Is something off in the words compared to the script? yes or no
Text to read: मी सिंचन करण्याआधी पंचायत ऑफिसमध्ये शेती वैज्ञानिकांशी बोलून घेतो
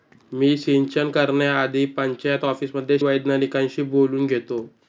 yes